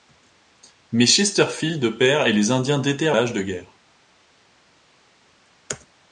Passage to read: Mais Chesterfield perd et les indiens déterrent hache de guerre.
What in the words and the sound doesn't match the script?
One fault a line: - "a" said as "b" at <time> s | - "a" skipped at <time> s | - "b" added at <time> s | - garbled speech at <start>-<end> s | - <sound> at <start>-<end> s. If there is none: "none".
none